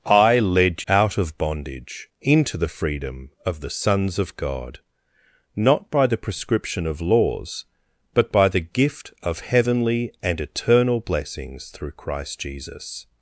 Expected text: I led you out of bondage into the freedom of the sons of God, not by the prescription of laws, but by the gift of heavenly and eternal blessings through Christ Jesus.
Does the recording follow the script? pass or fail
fail